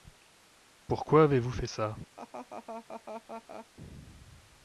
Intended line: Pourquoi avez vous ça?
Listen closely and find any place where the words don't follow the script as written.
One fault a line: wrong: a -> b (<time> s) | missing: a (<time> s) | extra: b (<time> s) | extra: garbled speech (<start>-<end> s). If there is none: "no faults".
extra: fait (1.5 s)